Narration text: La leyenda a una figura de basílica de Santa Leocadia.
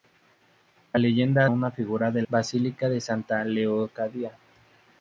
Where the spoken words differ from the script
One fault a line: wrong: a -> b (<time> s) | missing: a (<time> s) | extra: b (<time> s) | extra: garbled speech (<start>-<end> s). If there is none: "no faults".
no faults